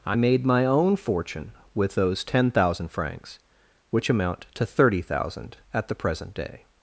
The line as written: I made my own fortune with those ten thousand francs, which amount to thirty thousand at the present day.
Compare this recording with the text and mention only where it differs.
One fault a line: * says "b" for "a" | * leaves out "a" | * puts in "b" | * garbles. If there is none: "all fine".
all fine